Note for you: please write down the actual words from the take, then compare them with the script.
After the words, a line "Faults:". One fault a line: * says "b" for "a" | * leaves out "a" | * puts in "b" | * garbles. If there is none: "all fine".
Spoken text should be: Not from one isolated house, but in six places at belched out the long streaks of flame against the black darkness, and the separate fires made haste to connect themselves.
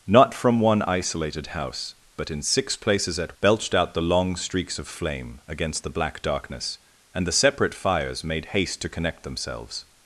Not from one isolated house, but in six places at belched out the long streaks of flame against the black darkness, and the separate fires made haste to connect themselves.
Faults:
all fine